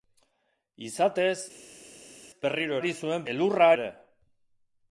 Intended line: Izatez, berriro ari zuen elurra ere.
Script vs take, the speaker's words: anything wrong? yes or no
no